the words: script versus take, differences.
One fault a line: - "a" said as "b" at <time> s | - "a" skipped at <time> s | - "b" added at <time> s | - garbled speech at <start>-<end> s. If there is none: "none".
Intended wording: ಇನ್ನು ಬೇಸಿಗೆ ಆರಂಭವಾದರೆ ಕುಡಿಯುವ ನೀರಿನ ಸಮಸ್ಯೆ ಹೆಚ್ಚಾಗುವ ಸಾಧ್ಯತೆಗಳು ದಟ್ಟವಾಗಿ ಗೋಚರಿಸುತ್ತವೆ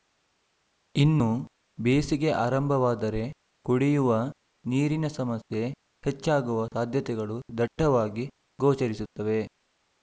none